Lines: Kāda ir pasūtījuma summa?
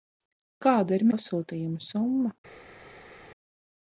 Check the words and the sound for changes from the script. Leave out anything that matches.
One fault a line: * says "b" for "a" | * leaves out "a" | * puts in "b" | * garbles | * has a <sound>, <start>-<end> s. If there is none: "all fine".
all fine